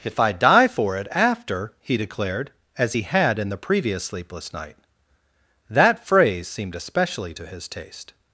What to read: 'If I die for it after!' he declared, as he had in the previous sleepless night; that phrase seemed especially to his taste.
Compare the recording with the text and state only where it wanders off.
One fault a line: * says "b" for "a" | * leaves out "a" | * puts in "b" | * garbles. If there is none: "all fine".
all fine